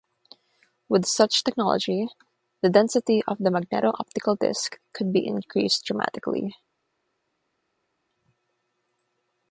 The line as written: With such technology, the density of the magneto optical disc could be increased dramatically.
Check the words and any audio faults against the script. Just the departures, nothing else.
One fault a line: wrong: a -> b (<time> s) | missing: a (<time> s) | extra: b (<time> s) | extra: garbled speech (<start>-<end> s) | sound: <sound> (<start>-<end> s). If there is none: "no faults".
no faults